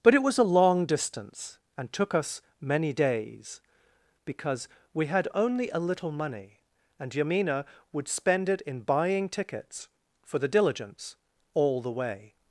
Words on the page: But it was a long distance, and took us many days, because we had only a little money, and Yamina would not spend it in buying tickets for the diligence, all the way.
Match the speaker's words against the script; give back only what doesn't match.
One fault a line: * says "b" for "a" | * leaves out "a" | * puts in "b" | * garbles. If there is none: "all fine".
* leaves out "not"